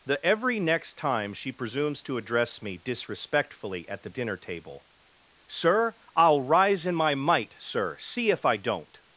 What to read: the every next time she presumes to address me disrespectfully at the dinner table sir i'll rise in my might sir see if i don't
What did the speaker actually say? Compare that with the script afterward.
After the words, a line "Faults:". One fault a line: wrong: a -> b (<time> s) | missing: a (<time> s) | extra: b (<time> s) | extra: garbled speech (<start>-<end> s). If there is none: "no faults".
the every next time she presumes to address me disrespectfully at the dinner table sir i'll rise in my might sir see if i don't
Faults:
no faults